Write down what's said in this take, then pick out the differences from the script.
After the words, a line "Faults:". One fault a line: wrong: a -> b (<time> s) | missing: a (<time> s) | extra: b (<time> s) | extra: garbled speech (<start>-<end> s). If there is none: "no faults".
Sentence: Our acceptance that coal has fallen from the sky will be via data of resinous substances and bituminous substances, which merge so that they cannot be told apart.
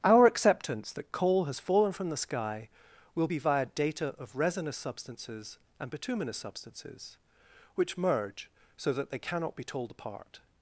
Our acceptance that coal has fallen from the sky will be via data of resinous substances and bituminous substances, which merge so that they cannot be told apart.
Faults:
no faults